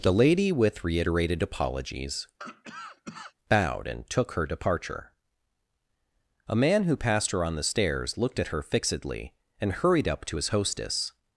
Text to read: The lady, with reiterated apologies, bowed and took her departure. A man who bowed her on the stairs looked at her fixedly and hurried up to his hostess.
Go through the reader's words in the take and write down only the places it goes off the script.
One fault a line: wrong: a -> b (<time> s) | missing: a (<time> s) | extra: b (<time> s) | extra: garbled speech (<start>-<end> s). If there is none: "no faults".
wrong: bowed -> passed (6.9 s)